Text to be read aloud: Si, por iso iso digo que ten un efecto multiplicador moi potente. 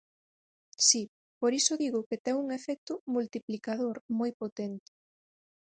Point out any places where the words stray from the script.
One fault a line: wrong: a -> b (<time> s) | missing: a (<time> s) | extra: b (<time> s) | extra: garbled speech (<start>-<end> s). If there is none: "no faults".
missing: iso (1.7 s)